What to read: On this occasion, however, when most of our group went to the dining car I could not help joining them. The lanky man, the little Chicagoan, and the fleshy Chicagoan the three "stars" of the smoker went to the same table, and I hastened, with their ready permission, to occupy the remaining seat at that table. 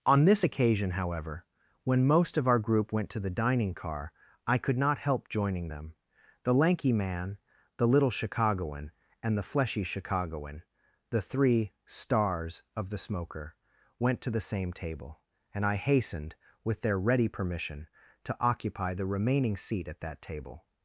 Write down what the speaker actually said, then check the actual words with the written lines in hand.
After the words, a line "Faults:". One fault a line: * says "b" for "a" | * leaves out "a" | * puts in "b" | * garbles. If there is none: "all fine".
On this occasion, however, when most of our group went to the dining car I could not help joining them. The lanky man, the little Chicagoan, and the fleshy Chicagoan the three "stars" of the smoker went to the same table, and I hastened, with their ready permission, to occupy the remaining seat at that table.
Faults:
all fine